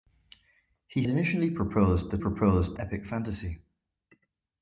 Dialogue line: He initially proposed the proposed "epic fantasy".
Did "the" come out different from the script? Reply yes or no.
no